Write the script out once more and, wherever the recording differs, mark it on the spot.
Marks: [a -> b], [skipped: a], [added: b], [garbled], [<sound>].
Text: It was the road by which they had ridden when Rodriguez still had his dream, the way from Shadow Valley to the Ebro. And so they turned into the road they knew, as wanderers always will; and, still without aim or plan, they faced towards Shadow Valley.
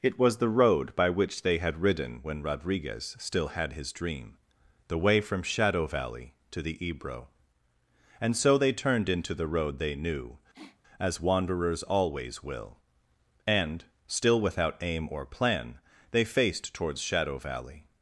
It was the road by which they had ridden when Rodriguez still had his dream, the way from Shadow Valley to the Ebro. And so they turned into the road they knew, [sniff] as wanderers always will; and, still without aim or plan, they faced towards Shadow Valley.